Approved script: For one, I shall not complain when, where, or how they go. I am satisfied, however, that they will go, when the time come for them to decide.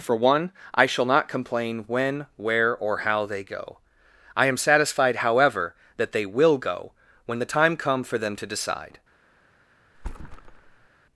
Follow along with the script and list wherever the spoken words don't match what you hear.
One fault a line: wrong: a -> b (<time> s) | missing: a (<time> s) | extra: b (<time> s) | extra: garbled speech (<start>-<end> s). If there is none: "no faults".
no faults